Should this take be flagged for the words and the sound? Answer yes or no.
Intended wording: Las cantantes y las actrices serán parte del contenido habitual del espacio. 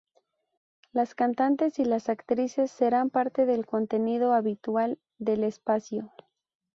no